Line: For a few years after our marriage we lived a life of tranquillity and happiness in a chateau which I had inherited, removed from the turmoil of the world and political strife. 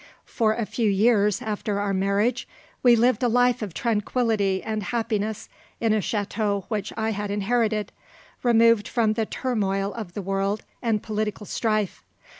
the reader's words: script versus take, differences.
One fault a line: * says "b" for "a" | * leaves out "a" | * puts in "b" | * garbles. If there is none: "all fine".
all fine